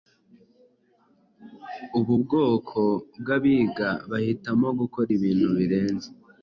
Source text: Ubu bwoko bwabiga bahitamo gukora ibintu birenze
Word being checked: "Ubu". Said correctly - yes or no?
yes